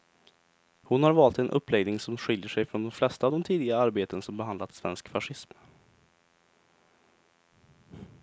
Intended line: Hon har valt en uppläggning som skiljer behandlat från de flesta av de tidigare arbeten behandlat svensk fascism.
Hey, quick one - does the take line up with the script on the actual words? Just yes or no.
no